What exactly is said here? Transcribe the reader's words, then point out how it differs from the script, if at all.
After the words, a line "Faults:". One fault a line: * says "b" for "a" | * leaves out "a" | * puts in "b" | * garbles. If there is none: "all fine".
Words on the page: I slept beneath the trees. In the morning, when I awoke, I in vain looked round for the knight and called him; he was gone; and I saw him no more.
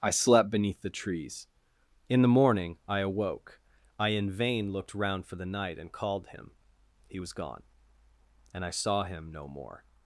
I slept beneath the trees. In the morning, I awoke, I in vain looked round for the knight and called him; he was gone; and I saw him no more.
Faults:
* leaves out "when"